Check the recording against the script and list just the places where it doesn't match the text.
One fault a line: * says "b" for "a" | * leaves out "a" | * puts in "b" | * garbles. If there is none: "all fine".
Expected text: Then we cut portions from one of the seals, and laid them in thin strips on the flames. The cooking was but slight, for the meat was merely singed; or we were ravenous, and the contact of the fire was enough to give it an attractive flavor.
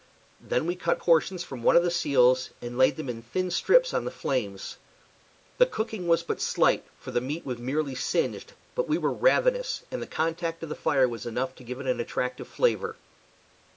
* says "but" for "or"